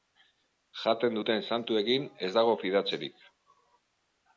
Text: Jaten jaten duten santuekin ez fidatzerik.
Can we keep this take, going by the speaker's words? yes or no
no